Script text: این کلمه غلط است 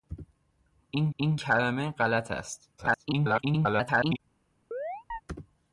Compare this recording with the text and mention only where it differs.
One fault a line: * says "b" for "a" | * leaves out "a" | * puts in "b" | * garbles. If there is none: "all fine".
* puts in "این"
* garbles